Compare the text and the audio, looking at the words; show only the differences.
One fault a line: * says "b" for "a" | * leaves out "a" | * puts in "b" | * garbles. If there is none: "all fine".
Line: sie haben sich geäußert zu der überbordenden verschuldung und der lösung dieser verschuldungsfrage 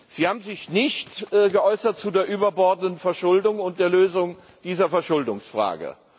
* puts in "nicht"